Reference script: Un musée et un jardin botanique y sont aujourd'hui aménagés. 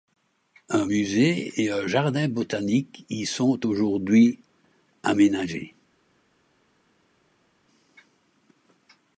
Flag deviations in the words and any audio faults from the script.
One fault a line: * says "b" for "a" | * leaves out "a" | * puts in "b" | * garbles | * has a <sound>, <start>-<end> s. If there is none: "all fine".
all fine